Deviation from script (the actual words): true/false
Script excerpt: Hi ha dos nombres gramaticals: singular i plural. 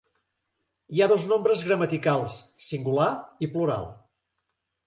false